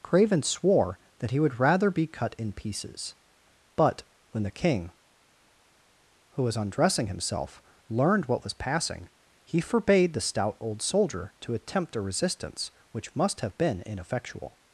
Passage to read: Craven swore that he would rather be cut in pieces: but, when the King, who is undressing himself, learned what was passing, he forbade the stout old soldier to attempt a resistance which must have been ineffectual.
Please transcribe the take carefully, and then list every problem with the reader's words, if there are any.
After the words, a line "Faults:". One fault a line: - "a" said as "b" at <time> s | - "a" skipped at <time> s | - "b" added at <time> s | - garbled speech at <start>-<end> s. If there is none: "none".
Craven swore that he would rather be cut in pieces: but, when the King, who was undressing himself, learned what was passing, he forbade the stout old soldier to attempt a resistance which must have been ineffectual.
Faults:
- "is" said as "was" at 6.4 s